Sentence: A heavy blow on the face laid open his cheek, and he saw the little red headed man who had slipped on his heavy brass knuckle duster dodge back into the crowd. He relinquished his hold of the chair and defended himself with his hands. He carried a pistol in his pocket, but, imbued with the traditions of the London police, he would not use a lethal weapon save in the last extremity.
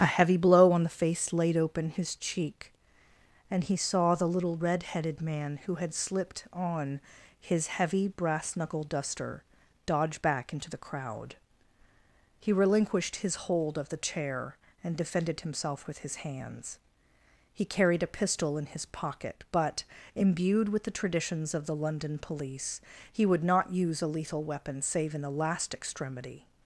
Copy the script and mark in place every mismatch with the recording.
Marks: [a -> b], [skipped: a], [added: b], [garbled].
A heavy blow on the face laid open his cheek, and he saw the little red headed man who had slipped on his heavy brass knuckle duster dodge back into the crowd. He relinquished his hold of the chair and defended himself with his hands. He carried a pistol in his pocket, but, imbued with the traditions of the London police, he would not use a lethal weapon save in the last extremity.